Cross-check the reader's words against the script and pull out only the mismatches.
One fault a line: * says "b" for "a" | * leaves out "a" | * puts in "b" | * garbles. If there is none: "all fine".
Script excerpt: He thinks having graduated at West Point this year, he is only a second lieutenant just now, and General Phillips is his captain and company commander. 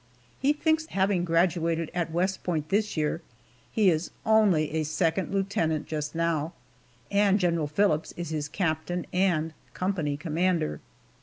all fine